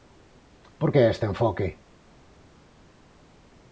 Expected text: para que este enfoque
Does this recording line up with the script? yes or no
no